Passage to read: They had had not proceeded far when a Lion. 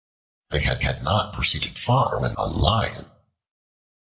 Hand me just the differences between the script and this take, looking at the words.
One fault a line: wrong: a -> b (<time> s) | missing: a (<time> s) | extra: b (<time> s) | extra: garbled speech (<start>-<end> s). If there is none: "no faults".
no faults